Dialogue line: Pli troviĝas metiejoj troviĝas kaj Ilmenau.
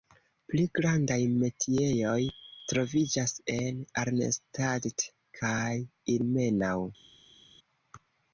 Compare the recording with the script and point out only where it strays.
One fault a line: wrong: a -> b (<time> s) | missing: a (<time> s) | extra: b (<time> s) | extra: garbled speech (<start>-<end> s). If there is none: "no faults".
wrong: troviĝas -> grandaj (0.8 s)
extra: en Arnstadt (3.6 s)